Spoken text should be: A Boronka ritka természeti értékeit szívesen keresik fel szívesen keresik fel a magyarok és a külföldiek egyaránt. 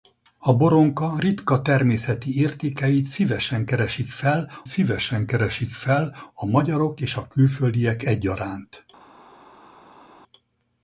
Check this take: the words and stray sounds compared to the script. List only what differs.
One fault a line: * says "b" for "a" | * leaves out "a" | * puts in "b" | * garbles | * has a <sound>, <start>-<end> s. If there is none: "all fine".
all fine